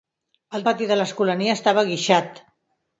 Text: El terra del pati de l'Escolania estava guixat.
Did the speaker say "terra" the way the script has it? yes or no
no